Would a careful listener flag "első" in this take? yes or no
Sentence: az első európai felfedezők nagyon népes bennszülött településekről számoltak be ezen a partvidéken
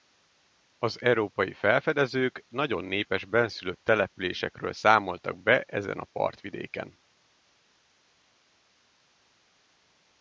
yes